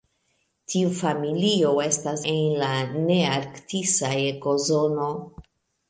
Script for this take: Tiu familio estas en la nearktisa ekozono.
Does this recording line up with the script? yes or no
yes